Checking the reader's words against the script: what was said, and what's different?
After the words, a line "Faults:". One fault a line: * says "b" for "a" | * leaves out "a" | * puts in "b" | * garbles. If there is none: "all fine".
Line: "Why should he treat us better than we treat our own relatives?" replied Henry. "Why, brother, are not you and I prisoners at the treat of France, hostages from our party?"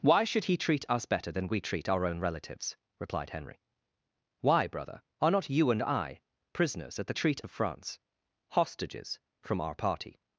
"Why should he treat us better than we treat our own relatives?" replied Henry. "Why, brother, are not you and I prisoners at the treat of France, hostages from our party?"
Faults:
all fine